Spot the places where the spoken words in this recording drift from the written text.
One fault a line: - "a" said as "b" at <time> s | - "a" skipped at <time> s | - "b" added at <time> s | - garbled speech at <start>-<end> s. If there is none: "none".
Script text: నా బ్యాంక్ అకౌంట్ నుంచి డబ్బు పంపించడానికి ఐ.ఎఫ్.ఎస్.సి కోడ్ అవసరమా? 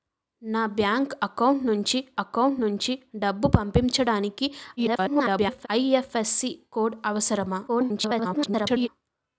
- "అకౌంట్ నుంచి" added at 2.2 s
- garbled speech at 4.8-5.7 s
- garbled speech at 7.7-8.9 s